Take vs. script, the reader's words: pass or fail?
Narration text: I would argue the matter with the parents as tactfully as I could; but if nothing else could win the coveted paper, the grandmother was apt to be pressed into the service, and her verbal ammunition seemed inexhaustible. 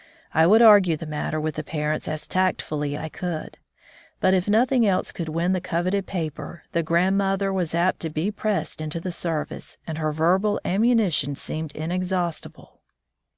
fail